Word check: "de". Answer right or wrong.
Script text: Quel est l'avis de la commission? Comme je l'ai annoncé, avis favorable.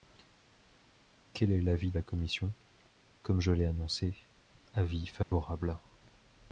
wrong